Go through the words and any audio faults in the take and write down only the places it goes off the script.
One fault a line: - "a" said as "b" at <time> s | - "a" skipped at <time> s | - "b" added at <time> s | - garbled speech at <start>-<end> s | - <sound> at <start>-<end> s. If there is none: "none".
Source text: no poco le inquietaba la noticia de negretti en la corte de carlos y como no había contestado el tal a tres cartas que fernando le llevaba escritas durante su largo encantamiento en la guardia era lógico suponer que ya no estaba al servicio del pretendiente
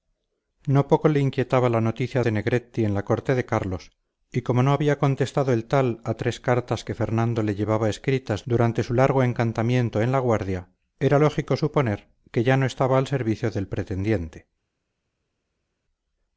none